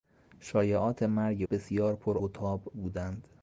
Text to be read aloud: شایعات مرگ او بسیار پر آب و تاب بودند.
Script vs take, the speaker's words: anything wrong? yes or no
yes